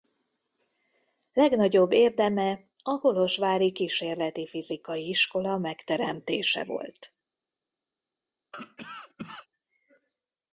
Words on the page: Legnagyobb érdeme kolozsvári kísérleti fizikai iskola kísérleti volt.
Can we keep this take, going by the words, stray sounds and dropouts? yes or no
no